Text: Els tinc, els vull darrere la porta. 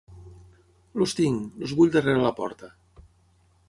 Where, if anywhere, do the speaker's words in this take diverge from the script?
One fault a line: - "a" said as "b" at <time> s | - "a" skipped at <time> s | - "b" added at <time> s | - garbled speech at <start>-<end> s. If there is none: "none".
none